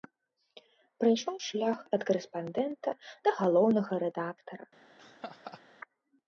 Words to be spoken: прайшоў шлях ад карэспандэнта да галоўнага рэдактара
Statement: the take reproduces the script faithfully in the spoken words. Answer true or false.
true